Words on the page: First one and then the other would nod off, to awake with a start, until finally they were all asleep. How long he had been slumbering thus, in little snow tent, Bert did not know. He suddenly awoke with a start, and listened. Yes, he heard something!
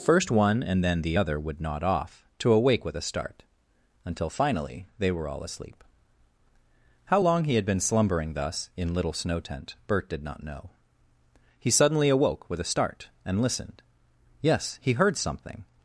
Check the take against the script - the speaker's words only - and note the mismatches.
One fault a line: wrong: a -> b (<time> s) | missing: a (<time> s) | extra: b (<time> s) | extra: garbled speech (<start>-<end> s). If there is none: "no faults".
no faults